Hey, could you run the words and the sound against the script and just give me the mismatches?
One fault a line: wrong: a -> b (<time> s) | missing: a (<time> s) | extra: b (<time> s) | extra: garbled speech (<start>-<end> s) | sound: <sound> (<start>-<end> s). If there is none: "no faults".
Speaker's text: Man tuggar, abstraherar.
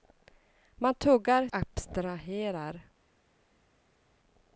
no faults